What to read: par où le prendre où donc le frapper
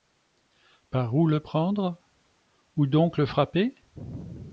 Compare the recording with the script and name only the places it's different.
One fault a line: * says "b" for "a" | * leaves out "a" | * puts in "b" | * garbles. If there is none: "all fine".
all fine